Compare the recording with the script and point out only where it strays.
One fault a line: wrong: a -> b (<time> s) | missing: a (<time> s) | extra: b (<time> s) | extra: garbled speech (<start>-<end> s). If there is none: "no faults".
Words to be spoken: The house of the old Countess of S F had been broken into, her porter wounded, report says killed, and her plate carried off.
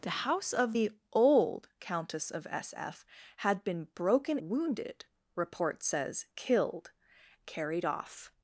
missing: into her porter (4.4 s)
missing: and her plate (6.9 s)